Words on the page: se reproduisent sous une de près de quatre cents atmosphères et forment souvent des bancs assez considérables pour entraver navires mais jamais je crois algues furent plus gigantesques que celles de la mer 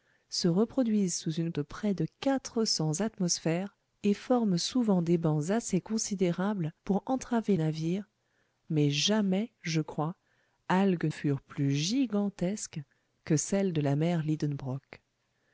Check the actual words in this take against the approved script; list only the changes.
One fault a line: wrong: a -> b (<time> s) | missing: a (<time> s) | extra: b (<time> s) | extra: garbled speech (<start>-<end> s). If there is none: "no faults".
no faults